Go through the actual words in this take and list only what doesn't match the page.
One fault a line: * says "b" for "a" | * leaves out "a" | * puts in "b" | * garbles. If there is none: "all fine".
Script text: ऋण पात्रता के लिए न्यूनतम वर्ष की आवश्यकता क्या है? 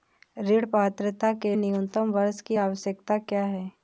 * leaves out "लिए"